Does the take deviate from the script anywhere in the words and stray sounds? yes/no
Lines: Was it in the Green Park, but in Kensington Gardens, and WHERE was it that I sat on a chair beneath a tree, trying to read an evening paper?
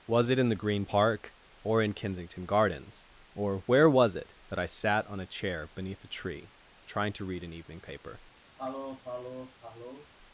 yes